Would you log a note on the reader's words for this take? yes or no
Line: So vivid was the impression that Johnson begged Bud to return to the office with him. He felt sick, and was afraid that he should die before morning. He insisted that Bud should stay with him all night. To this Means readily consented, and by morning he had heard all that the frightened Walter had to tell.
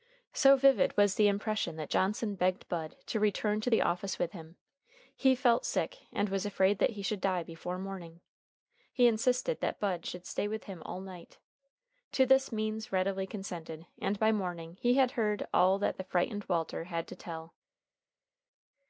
no